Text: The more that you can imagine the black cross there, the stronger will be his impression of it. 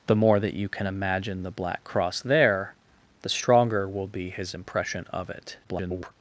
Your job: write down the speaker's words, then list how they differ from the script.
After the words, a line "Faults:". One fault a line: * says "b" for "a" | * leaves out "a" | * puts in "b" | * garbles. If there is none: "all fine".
The more that you can imagine the black cross there, the stronger will be his impression of it. [garbled]
Faults:
* garbles